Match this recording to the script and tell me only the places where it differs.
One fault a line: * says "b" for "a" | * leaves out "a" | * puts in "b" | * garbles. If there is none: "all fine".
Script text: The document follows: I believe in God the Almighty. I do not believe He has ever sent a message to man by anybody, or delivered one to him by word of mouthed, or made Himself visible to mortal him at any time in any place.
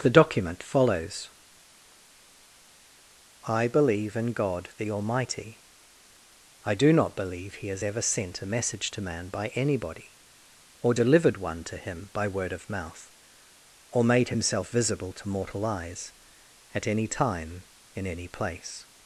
* says "mouth" for "mouthed"
* says "eyes" for "him"